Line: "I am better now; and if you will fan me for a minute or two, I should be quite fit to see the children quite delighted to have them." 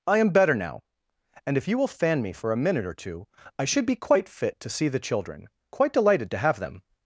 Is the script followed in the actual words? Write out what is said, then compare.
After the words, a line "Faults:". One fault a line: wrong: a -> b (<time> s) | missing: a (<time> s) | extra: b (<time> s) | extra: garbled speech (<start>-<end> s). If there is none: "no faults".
"I am better now; and if you will fan me for a minute or two, I should be quite fit to see the children quite delighted to have them."
Faults:
no faults